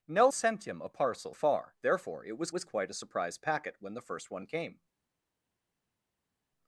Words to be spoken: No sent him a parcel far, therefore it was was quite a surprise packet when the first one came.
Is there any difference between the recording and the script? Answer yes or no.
no